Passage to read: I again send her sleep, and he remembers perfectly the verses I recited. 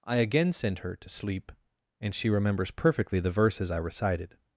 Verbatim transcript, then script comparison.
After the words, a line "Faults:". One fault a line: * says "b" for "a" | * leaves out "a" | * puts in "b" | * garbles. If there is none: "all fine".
I again send her to sleep, and she remembers perfectly the verses I recited.
Faults:
* puts in "to"
* says "she" for "he"